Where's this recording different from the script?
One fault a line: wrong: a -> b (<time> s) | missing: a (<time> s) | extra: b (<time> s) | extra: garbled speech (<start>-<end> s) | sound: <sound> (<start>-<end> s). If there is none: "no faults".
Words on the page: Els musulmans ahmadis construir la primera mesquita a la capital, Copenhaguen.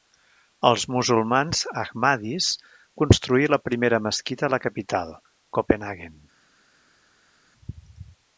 no faults